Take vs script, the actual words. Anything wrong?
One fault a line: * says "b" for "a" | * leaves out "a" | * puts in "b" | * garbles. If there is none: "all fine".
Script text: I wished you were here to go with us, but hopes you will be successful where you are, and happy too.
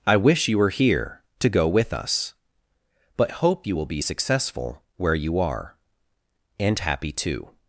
* says "wish" for "wished"
* says "hope" for "hopes"